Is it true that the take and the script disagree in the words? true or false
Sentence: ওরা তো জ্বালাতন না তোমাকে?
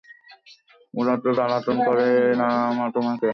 true